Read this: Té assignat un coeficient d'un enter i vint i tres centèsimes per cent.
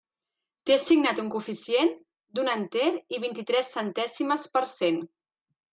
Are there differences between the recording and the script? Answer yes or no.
no